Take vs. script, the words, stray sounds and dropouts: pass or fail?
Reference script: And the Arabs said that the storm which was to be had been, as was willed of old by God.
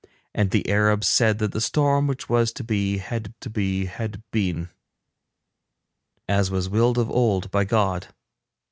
fail